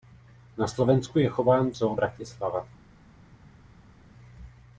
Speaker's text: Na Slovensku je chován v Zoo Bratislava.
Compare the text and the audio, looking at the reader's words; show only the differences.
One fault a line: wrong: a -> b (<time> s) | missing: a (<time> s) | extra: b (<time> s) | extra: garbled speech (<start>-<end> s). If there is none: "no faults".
no faults